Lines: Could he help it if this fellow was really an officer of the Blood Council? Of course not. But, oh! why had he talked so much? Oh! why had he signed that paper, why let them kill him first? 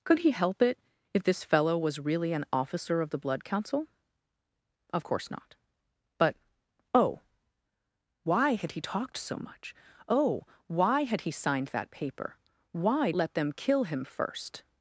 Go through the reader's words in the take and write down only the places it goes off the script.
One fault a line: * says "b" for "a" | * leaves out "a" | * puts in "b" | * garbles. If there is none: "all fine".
all fine